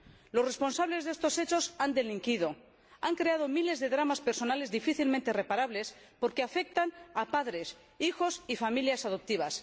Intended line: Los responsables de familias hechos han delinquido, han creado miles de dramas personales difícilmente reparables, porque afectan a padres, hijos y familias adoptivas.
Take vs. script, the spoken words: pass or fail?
fail